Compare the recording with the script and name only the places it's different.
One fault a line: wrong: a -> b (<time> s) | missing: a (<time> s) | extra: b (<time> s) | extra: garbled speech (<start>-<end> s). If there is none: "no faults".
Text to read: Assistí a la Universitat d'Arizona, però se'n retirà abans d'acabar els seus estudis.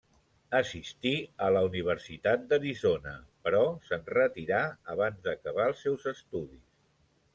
no faults